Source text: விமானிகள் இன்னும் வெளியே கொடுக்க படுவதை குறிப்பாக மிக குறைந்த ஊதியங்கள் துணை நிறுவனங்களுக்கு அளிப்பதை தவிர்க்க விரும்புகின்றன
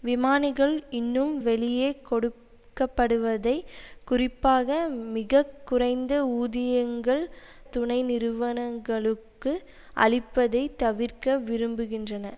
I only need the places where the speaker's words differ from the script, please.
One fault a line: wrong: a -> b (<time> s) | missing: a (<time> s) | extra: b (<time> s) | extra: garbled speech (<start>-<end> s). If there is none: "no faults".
no faults